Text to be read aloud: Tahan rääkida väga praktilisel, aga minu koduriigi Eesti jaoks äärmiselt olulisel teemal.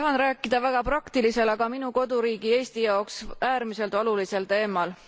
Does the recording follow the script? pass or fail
pass